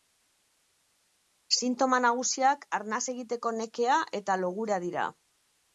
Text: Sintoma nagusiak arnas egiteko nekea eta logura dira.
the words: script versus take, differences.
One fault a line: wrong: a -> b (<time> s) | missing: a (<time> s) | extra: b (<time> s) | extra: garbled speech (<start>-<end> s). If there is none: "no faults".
no faults